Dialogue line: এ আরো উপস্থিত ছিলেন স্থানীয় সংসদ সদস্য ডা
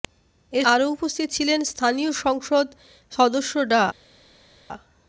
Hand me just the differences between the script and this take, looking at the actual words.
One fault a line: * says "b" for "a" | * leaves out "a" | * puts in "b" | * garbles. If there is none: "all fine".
all fine